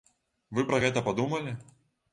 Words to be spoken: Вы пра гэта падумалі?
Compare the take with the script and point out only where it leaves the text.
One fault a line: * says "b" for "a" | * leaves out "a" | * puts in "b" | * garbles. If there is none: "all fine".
all fine